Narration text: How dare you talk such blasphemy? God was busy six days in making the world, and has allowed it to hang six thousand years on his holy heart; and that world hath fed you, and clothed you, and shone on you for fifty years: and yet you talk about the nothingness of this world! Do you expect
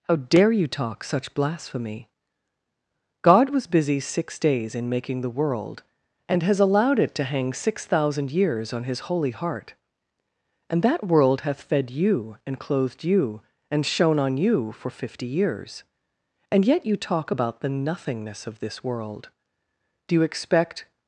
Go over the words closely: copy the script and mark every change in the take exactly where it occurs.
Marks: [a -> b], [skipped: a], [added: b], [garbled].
How dare you talk such blasphemy? God was busy six days in making the world, and has allowed it to hang six thousand years on his holy heart; and that world hath fed you, and clothed you, and shone on you for fifty years: and yet you talk about the nothingness of this world! Do you expect